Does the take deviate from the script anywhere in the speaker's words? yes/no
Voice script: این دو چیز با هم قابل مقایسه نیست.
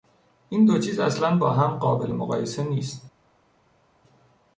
yes